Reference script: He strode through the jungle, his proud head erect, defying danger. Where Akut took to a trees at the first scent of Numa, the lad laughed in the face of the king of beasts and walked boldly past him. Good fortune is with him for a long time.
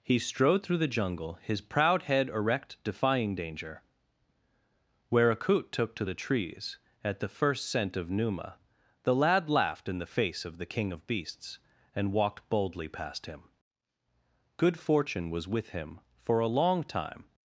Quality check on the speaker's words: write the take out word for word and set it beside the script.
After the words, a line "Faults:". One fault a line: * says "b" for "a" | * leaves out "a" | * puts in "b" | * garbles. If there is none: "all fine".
He strode through the jungle, his proud head erect, defying danger. Where Akut took to the trees at the first scent of Numa, the lad laughed in the face of the king of beasts and walked boldly past him. Good fortune was with him for a long time.
Faults:
* says "the" for "a"
* says "was" for "is"